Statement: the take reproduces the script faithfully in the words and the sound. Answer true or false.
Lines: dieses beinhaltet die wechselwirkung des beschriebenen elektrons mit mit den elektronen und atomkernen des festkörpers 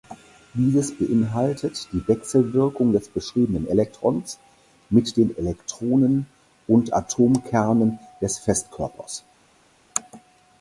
false